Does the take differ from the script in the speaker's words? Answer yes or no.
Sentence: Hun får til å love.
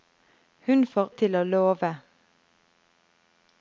no